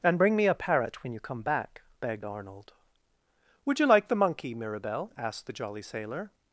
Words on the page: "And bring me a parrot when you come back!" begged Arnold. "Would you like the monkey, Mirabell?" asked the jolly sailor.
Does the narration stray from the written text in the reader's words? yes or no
no